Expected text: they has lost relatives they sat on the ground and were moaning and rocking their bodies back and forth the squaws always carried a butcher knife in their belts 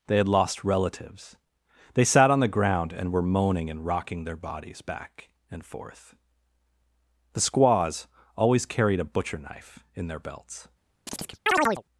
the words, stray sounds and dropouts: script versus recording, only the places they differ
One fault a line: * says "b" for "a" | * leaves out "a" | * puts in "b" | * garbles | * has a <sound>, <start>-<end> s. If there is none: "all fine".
* says "had" for "has"
* has a chirp, 11.1-11.8 s